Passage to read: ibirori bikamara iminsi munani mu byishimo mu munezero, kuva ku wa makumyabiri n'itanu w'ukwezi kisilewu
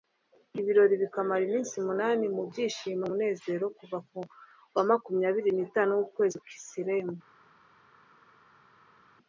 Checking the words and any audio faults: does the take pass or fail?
pass